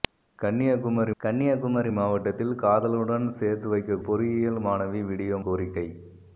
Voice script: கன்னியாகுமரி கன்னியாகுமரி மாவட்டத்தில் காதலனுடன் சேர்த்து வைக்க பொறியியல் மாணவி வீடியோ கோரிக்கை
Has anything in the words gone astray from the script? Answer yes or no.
no